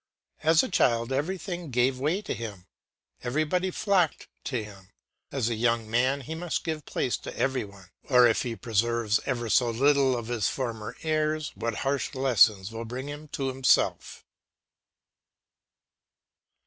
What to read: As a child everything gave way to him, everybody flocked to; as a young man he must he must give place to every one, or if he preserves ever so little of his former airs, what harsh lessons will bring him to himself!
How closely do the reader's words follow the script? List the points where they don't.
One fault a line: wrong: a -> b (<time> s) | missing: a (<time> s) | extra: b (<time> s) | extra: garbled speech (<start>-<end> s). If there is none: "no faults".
extra: him (4.6 s)
missing: he must (6.6 s)